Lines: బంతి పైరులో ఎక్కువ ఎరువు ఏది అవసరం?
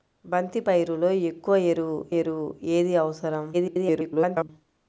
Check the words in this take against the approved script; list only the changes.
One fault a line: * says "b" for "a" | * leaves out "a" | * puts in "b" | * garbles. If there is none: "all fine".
* puts in "ఎరువు"
* garbles